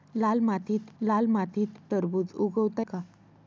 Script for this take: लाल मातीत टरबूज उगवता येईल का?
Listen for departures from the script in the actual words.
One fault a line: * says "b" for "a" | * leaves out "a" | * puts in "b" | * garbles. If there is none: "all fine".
* puts in "लाल मातीत"
* leaves out "येईल"